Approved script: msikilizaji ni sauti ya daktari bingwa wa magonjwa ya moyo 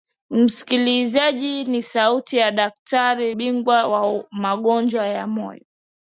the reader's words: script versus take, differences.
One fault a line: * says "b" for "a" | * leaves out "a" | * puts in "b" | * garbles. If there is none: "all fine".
all fine